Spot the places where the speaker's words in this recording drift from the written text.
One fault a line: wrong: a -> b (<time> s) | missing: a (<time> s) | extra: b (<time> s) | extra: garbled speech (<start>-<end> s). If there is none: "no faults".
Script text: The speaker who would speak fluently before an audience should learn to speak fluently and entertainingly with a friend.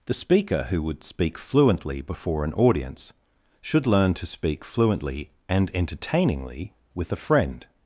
no faults